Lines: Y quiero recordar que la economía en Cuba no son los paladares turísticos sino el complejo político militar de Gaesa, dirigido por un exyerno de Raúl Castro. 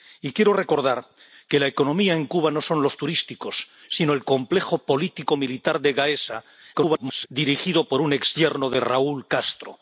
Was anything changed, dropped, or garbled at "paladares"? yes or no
yes